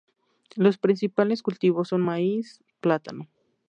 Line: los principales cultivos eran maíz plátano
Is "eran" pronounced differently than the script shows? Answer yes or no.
yes